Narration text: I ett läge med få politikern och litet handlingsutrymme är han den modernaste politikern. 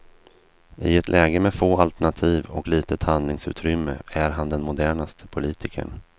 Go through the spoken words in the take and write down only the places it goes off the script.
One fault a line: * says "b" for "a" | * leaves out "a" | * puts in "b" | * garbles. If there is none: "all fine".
* says "alternativ" for "politikern"